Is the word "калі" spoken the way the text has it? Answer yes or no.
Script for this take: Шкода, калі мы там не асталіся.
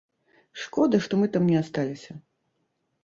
no